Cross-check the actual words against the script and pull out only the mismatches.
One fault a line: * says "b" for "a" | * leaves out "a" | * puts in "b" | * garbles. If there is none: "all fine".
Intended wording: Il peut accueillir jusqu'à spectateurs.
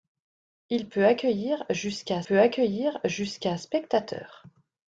* puts in "peut accueillir jusqu'à"